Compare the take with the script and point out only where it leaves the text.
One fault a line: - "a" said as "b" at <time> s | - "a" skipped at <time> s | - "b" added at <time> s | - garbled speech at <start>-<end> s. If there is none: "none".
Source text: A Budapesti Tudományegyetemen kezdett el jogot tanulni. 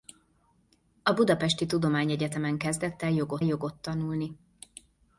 - "jogot" added at 3.4 s